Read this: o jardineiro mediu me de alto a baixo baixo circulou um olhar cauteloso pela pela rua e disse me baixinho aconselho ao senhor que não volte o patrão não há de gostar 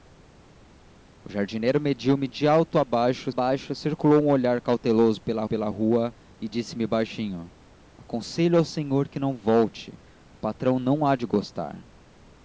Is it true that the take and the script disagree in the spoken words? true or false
false